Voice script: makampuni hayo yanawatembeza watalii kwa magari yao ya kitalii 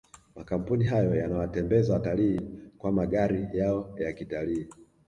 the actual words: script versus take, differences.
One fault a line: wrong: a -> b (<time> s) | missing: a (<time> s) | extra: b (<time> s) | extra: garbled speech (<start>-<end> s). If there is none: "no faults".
no faults